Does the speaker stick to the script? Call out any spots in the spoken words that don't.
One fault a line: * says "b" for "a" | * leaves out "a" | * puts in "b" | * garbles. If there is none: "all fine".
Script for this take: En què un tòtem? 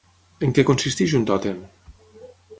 * puts in "consisteix"